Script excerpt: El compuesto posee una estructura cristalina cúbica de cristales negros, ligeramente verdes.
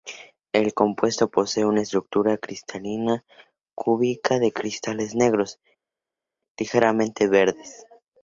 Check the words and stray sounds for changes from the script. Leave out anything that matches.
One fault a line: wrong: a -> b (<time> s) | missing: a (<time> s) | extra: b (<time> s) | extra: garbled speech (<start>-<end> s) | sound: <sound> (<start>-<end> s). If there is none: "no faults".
no faults